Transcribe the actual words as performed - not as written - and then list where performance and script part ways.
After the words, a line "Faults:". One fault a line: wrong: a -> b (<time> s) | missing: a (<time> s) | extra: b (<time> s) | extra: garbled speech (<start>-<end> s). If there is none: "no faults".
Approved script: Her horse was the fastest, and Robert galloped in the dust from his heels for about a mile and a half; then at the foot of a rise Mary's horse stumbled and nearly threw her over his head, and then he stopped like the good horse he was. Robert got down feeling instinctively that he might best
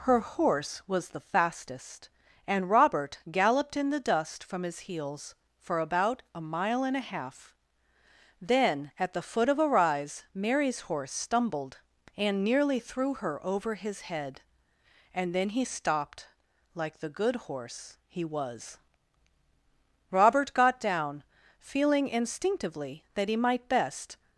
Her horse was the fastest, and Robert galloped in the dust from his heels for about a mile and a half; then at the foot of a rise Mary's horse stumbled and nearly threw her over his head, and then he stopped like the good horse he was. Robert got down feeling instinctively that he might best
Faults:
no faults